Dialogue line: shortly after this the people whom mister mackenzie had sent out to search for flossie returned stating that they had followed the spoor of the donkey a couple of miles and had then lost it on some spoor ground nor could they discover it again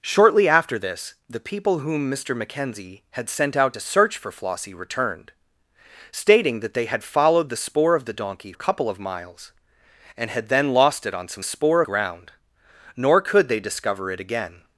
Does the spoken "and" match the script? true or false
true